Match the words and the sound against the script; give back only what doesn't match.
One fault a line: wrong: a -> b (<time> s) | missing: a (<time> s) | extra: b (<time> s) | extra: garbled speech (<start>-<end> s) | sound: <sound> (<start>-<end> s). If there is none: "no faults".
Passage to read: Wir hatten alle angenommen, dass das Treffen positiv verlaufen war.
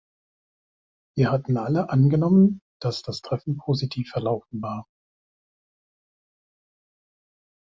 no faults